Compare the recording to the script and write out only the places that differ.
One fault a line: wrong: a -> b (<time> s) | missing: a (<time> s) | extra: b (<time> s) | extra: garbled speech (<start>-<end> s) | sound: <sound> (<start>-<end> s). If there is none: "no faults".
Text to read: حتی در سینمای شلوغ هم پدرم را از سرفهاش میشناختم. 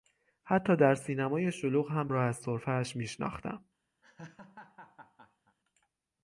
missing: پدرم (2.1 s)
sound: laugh (4.0-5.6 s)